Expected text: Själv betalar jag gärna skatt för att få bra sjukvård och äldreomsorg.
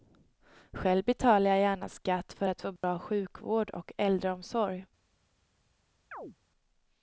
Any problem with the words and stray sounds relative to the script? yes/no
yes